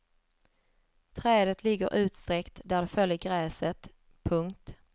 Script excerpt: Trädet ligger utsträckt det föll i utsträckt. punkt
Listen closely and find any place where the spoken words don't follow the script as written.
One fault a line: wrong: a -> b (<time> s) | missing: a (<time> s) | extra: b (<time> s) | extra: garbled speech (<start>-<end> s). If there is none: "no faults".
extra: där (2.6 s)
wrong: utsträckt -> gräset (3.2 s)